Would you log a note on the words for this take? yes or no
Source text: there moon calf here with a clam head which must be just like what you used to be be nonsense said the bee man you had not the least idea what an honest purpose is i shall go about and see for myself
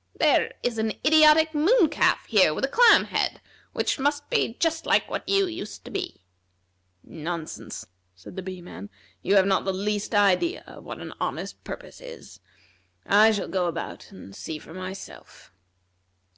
yes